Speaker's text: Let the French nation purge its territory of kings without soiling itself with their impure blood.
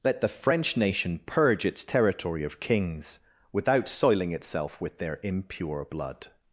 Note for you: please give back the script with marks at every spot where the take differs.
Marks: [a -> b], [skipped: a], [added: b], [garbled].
Let the French nation purge its territory of kings without soiling itself with their impure blood.